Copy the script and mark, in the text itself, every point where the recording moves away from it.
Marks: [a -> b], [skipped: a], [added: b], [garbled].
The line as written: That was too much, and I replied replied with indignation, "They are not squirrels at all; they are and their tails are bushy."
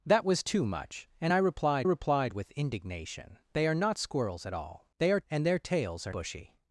That was too much, and I replied replied with indignation, "They are not squirrels at all; they are and their tails are bushy."